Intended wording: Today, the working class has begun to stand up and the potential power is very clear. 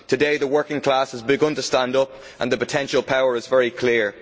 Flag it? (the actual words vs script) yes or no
no